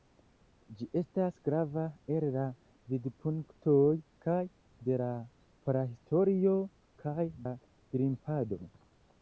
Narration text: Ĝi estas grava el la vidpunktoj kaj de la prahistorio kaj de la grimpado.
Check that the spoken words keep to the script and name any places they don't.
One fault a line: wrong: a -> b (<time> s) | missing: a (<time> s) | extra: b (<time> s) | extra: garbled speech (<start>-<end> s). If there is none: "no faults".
missing: de (7.3 s)